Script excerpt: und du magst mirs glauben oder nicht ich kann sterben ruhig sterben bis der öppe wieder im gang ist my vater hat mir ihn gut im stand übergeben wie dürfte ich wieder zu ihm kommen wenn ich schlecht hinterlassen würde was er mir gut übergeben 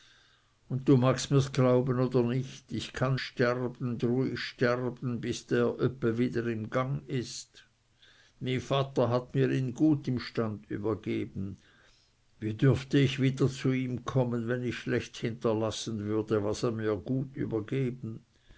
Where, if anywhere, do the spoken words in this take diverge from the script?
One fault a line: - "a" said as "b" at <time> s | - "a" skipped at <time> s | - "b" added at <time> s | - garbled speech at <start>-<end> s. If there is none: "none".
none